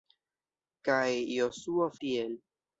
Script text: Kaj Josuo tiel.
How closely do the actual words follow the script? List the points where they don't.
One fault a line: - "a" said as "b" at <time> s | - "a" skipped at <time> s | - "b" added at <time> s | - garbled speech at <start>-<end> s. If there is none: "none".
none